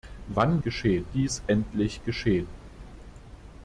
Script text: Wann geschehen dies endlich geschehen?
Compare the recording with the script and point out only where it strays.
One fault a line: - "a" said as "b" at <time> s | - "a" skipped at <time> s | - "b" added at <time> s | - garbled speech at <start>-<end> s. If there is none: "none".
none